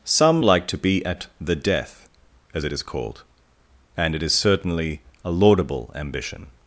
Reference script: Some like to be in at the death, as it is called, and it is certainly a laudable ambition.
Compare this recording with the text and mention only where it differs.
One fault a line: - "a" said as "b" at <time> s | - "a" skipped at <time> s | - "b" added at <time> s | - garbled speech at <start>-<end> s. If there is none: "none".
- "in" skipped at 1.0 s